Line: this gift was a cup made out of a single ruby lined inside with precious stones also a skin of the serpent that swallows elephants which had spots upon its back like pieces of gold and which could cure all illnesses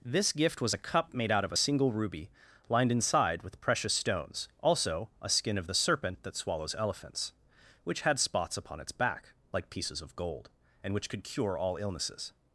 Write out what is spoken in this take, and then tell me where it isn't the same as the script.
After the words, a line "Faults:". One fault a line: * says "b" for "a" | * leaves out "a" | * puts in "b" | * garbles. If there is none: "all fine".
this gift was a cup made out of a single ruby lined inside with precious stones also a skin of the serpent that swallows elephants which had spots upon its back like pieces of gold and which could cure all illnesses
Faults:
all fine